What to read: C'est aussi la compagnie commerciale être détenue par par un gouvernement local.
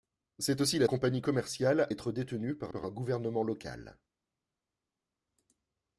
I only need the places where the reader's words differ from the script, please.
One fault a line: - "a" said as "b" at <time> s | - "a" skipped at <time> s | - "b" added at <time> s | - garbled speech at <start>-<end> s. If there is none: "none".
none